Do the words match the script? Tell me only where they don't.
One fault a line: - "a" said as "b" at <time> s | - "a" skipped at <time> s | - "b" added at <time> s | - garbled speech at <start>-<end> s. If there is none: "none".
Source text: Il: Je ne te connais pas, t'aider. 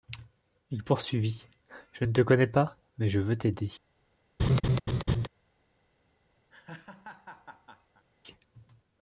- "poursuivit" added at 0.8 s
- "mais je veux" added at 3.0 s